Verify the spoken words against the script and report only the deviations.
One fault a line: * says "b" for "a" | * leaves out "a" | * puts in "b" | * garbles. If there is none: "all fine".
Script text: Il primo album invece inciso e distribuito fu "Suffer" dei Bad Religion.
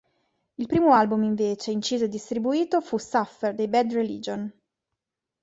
all fine